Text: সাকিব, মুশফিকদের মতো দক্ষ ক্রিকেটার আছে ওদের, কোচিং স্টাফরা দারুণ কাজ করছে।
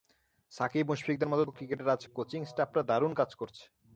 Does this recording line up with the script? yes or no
no